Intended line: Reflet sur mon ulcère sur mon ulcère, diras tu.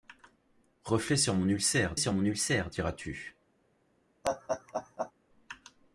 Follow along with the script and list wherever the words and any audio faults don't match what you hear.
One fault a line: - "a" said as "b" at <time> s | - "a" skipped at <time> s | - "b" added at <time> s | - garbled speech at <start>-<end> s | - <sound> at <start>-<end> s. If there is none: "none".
- laugh at 4.2-5.1 s